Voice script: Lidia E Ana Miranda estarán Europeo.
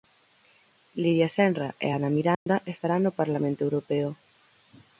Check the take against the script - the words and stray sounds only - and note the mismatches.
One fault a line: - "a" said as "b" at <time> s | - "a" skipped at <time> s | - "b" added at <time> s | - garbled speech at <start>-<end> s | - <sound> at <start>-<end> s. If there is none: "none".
- "Senra" added at 1.4 s
- dropout at 2.3-2.5 s
- "no Parlamento" added at 3.0 s